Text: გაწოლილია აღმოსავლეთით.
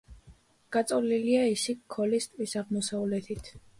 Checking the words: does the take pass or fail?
fail